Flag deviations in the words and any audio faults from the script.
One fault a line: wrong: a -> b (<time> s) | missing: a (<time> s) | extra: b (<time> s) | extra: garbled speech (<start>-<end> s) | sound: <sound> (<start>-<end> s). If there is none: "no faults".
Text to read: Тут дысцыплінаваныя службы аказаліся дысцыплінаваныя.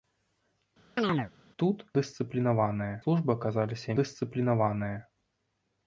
sound: chirp (1.0-1.3 s)